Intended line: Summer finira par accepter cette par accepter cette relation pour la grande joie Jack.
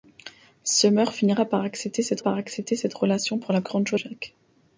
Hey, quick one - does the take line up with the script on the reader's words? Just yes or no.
yes